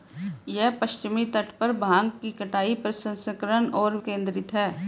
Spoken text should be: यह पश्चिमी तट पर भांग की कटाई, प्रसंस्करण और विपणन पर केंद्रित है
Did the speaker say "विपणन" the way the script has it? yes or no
no